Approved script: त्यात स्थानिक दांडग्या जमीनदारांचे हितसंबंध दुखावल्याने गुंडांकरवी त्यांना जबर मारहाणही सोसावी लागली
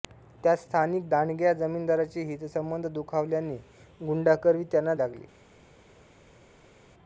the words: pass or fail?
fail